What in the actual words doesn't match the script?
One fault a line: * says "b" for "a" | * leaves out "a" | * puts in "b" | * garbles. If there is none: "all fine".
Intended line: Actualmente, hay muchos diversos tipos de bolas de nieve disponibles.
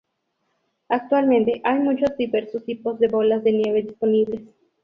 all fine